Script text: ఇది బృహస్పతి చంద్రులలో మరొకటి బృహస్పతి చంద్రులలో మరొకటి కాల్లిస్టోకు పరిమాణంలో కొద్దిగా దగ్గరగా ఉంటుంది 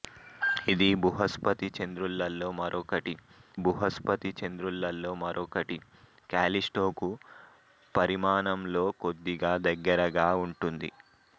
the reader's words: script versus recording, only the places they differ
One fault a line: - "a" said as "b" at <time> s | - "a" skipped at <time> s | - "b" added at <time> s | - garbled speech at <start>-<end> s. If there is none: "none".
none